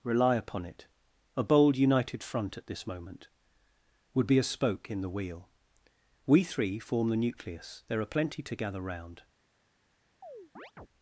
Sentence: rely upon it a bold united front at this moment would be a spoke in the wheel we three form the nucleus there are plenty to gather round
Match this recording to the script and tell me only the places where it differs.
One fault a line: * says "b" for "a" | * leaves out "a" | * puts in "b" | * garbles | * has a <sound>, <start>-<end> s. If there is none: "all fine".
* has a chirp, 10.2-10.9 s